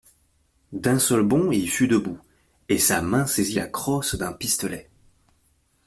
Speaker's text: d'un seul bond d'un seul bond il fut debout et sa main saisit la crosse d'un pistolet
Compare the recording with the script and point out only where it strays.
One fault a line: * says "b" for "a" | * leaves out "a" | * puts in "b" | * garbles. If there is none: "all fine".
* leaves out "d'un seul bond"